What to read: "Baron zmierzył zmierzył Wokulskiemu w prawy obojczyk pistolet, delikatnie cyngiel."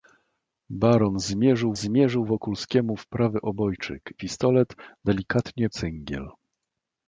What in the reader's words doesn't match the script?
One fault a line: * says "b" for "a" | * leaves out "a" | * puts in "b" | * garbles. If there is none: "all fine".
all fine